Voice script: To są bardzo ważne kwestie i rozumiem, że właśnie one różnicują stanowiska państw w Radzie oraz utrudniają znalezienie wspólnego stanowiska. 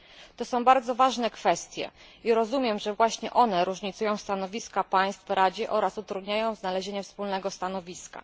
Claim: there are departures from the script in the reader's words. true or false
false